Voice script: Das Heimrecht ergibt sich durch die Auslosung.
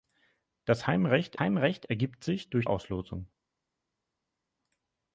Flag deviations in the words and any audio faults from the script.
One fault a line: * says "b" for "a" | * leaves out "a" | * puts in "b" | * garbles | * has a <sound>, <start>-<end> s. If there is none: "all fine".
* puts in "Heimrecht"
* leaves out "die"